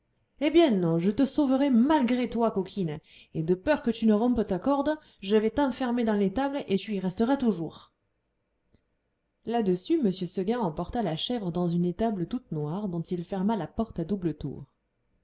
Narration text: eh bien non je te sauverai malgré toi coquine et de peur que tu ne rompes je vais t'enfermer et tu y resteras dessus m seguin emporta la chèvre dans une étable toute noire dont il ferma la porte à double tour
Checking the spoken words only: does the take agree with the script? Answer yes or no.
no